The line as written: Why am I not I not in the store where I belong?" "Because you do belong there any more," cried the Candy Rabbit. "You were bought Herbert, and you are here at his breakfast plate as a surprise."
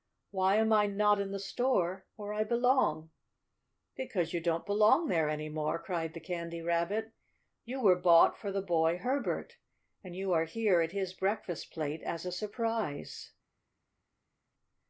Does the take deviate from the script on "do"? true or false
true